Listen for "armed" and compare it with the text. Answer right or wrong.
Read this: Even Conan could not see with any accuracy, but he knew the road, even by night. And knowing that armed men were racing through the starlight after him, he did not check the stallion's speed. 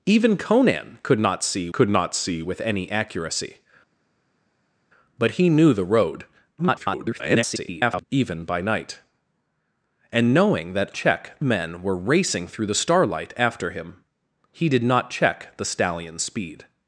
wrong